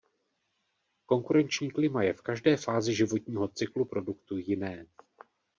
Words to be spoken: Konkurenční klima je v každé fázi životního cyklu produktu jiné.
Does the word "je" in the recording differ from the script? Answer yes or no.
no